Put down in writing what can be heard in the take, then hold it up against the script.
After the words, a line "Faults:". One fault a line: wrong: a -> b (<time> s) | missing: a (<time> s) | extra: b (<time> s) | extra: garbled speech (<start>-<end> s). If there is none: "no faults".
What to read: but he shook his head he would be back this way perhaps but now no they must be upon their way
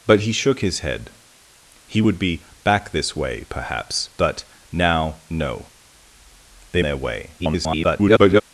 but he shook his head he would be back this way perhaps but now no they their way [garbled]
Faults:
missing: must be upon (6.8 s)
extra: garbled speech (7.4-8.4 s)